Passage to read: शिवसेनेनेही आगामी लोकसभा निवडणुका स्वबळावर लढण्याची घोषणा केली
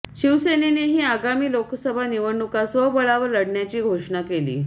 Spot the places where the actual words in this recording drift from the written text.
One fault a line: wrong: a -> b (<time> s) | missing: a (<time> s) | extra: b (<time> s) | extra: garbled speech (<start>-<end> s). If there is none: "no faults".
no faults